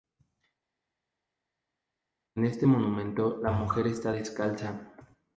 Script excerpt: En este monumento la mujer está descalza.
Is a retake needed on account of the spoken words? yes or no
no